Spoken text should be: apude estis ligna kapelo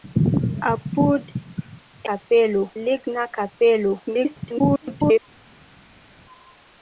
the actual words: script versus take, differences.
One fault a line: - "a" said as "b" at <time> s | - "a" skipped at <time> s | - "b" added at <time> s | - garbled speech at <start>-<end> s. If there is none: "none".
- "estis" said as "kapelo" at 2.1 s
- garbled speech at 4.1-5.2 s